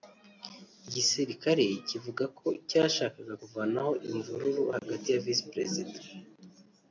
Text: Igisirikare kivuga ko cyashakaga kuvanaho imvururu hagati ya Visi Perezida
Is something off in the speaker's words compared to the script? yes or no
no